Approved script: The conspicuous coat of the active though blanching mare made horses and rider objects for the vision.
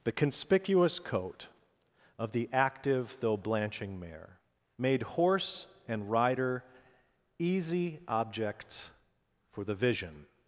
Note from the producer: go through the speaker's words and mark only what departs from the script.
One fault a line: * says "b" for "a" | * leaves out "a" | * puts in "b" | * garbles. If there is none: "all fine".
* says "horse" for "horses"
* puts in "easy"